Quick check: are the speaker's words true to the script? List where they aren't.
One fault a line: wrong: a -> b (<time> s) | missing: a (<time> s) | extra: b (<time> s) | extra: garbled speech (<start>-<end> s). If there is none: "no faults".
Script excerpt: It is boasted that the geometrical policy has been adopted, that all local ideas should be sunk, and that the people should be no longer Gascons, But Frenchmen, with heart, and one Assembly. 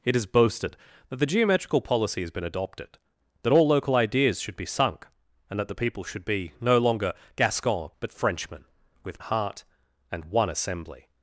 no faults